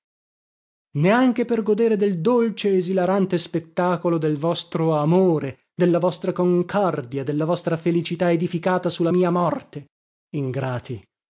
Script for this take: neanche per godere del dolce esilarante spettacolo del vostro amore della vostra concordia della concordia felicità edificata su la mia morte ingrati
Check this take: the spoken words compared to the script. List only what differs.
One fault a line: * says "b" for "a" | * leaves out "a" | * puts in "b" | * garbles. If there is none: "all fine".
* says "vostra" for "concordia"